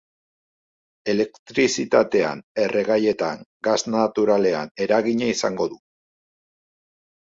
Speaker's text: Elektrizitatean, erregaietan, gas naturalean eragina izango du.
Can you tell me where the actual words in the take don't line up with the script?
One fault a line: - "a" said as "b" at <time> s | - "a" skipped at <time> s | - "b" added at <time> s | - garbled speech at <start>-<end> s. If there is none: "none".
none